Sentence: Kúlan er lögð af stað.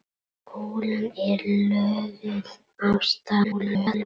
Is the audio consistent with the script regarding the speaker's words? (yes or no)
no